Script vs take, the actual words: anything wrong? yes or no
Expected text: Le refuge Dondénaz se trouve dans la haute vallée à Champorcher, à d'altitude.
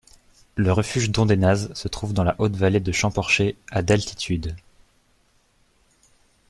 yes